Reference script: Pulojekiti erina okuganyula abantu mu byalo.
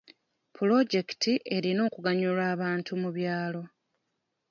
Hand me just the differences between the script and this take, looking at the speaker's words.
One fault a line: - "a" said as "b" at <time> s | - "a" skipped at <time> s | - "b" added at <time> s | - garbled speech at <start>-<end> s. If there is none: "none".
none